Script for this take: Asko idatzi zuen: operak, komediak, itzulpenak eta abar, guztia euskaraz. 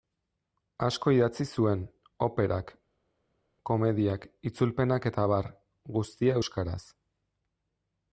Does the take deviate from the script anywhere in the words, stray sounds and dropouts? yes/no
no